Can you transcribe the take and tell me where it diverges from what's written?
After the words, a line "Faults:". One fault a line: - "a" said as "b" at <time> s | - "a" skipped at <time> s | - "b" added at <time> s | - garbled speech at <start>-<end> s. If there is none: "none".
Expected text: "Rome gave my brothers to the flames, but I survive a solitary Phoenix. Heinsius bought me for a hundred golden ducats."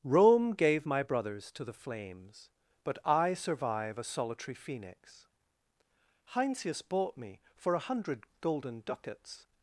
"Rome gave my brothers to the flames, but I survive a solitary Phoenix. Heinsius bought me for a hundred golden ducats."
Faults:
none